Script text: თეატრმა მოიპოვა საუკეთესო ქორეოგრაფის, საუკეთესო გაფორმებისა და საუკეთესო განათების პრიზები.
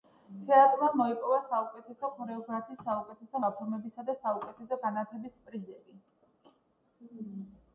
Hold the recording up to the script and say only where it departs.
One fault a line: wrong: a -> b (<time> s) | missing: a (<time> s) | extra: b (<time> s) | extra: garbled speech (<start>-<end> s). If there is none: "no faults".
no faults